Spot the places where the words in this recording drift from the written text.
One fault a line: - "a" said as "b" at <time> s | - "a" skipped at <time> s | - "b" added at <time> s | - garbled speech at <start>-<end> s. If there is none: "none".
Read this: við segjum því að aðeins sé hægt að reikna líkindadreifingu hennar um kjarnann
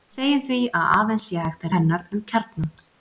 - "reikna líkindadreifingu" skipped at 1.8 s